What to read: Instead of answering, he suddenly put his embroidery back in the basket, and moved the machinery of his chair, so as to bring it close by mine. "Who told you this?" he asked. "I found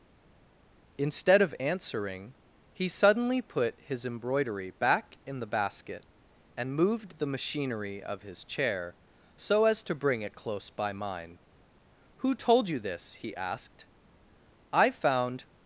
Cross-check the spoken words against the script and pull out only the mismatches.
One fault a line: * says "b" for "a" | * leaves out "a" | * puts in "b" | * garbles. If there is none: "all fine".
all fine